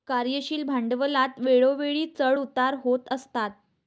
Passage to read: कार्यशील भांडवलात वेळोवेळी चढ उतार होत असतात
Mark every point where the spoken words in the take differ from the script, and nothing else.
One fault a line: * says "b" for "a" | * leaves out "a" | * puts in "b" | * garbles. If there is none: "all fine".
all fine